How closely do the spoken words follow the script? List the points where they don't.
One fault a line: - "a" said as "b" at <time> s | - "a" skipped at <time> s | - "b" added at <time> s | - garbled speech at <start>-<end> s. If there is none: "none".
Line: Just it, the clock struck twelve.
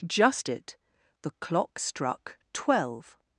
none